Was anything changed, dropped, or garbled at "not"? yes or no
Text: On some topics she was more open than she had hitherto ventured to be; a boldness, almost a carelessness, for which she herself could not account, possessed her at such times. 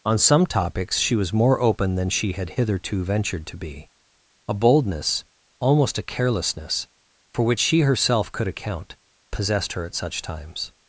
yes